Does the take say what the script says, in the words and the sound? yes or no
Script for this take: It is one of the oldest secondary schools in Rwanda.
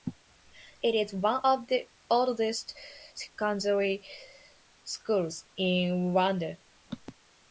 yes